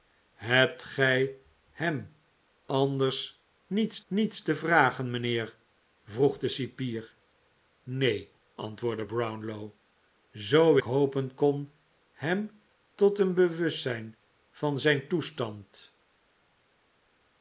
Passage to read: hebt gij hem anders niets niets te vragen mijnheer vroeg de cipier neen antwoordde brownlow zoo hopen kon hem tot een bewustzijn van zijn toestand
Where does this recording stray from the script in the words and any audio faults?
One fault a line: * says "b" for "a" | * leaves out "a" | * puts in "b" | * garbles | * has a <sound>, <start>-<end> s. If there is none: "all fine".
all fine